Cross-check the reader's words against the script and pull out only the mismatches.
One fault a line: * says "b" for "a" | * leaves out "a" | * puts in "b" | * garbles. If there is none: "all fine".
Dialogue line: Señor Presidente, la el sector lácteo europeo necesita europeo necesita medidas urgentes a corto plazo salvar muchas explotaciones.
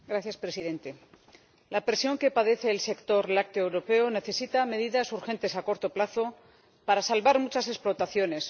* puts in "presión que padece"
* leaves out "europeo necesita"
* puts in "para"